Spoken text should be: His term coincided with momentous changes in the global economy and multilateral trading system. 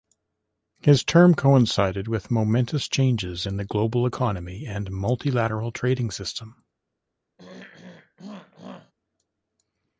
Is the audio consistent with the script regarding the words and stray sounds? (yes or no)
no